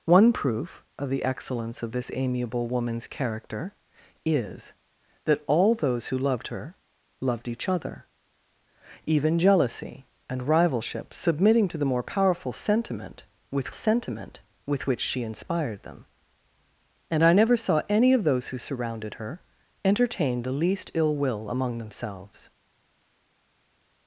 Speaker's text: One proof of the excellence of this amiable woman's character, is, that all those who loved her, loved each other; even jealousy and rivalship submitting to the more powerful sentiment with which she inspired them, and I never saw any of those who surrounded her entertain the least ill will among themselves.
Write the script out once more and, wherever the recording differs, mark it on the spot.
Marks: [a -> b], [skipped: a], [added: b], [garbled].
One proof of the excellence of this amiable woman's character, is, that all those who loved her, loved each other; even jealousy and rivalship submitting to the more powerful sentiment with [added: sentiment with] which she inspired them, and I never saw any of those who surrounded her entertain the least ill will among themselves.